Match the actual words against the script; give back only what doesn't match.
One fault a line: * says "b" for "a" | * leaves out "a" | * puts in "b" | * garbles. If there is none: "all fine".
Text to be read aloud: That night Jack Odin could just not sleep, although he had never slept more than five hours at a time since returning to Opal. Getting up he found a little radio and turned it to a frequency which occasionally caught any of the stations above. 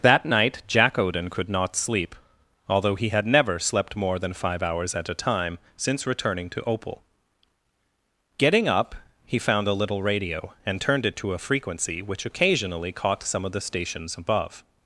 * leaves out "just"
* says "some" for "any"